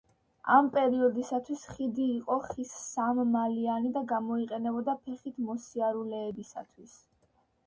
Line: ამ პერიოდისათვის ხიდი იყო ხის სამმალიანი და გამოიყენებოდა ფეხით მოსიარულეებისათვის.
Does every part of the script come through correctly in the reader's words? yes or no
yes